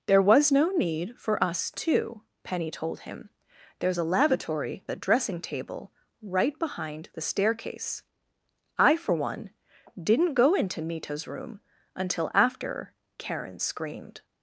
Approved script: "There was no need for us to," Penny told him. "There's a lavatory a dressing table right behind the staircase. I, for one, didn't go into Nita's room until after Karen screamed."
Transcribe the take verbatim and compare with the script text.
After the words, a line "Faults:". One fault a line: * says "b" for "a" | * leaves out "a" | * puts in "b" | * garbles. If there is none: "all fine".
"There was no need for us to," Penny told him. "There's a lavatory a dressing table right behind the staircase. I, for one, didn't go into Nita's room until after Karen screamed."
Faults:
all fine